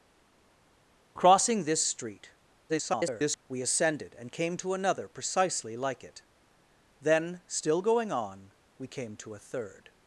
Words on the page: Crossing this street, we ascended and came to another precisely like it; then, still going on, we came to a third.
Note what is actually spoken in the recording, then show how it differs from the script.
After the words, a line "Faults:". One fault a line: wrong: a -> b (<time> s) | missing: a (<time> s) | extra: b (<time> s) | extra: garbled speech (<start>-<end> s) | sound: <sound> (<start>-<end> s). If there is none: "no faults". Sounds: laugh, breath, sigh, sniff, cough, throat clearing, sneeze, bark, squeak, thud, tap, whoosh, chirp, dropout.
Crossing this street, [garbled] we ascended and came to another precisely like it; then, still going on, we came to a third.
Faults:
extra: garbled speech (2.7-3.4 s)